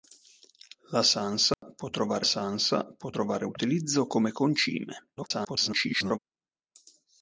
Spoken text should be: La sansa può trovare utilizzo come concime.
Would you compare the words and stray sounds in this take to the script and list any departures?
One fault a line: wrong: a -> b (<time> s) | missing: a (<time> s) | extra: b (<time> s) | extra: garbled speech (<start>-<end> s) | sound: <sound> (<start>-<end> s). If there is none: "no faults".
sound: dropout (1.5-1.6 s)
extra: sansa può trovare (2.2 s)
extra: garbled speech (5.2-6.2 s)